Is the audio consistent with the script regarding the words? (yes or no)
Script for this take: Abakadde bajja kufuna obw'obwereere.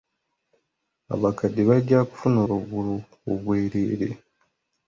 yes